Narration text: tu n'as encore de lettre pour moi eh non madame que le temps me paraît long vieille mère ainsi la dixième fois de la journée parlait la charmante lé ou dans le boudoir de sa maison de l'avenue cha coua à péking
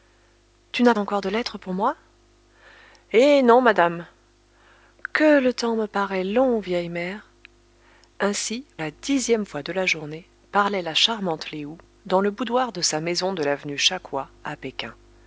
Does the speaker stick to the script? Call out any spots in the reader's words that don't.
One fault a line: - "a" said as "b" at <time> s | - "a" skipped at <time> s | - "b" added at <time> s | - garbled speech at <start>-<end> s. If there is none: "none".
none